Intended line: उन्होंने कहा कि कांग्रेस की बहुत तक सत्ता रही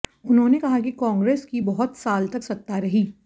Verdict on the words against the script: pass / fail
fail